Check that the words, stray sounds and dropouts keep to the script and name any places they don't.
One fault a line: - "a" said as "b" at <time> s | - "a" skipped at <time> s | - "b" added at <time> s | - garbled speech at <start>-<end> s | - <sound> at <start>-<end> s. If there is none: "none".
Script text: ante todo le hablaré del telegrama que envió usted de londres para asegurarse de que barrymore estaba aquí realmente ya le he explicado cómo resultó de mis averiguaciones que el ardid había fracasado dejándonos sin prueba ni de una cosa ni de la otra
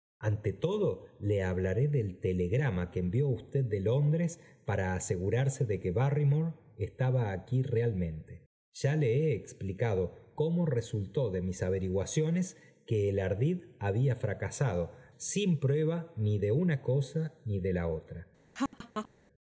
- "dejándonos" skipped at 14.9 s
- laugh at 18.5-19.1 s